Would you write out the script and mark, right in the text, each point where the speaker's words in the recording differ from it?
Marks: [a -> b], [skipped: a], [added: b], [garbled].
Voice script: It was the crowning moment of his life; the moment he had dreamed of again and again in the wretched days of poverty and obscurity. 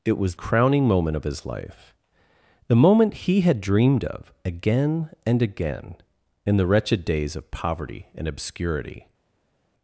It was [skipped: the] crowning moment of his life; the moment he had dreamed of again and again in the wretched days of poverty and obscurity.